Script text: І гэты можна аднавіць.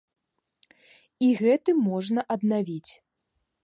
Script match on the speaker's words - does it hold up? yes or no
yes